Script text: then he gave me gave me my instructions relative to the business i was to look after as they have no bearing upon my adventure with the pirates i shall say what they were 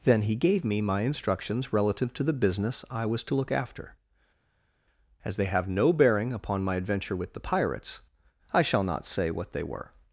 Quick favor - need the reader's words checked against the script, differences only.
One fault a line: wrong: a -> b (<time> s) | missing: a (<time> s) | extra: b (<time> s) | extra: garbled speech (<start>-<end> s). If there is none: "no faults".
missing: gave me (0.8 s)
extra: not (8.8 s)